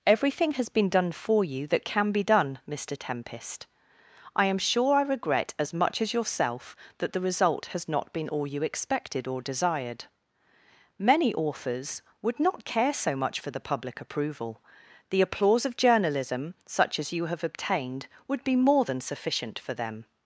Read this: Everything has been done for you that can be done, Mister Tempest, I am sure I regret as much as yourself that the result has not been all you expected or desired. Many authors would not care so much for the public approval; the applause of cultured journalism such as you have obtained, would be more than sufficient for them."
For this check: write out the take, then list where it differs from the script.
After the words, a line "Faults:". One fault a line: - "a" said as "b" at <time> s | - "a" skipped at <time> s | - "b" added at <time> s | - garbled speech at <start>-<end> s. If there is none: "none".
Everything has been done for you that can be done, Mister Tempest, I am sure I regret as much as yourself that the result has not been all you expected or desired. Many authors would not care so much for the public approval; the applause of journalism such as you have obtained, would be more than sufficient for them."
Faults:
- "cultured" skipped at 15.8 s